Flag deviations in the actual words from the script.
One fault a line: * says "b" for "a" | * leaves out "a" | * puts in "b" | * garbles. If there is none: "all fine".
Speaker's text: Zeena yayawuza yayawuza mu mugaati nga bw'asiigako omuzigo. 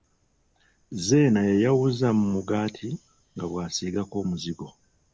* leaves out "yayawuza"